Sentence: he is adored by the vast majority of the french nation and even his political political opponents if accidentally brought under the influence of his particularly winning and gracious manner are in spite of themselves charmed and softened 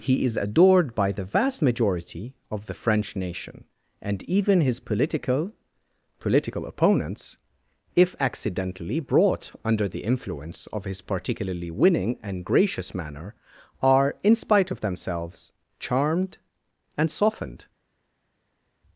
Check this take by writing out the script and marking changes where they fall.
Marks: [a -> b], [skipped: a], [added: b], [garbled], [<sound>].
he is adored by the vast majority of the french nation and even his political political opponents if accidentally brought under the influence of his particularly winning and gracious manner are in spite of themselves charmed and softened